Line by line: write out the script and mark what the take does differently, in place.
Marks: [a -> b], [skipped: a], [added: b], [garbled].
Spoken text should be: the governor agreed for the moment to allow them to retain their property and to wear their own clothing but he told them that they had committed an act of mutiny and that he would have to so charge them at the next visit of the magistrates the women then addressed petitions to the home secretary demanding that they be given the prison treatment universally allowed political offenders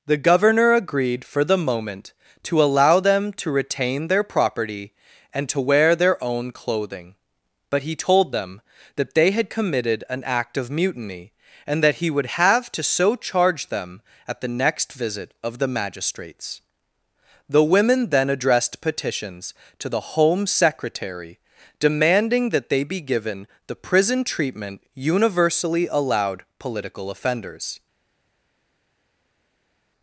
the governor agreed for the moment to allow them to retain their property and to wear their own clothing but he told them that they had committed an act of mutiny and that he would have to so charge them at the next visit of the magistrates the women then addressed petitions to the home secretary demanding that they be given the prison treatment universally allowed political offenders